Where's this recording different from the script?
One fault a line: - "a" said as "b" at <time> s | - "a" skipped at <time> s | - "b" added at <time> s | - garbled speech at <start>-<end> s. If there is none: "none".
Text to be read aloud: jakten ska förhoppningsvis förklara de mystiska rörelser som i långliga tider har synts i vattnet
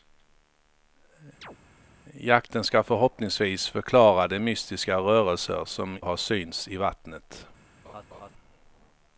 - "i långliga tider" skipped at 6.0 s